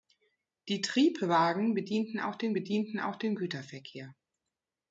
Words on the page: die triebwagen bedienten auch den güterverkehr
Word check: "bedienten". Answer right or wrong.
right